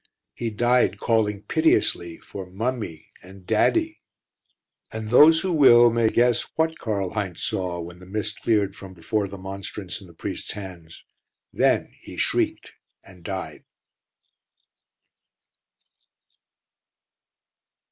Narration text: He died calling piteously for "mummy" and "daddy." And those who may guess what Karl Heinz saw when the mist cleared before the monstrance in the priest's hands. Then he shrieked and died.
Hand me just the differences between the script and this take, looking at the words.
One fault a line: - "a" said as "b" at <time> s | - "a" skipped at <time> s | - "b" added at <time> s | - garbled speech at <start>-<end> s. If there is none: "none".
- "will" added at 5.5 s
- "from" added at 8.8 s